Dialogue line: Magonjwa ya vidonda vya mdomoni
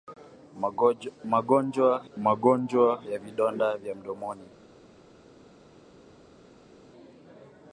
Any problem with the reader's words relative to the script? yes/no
yes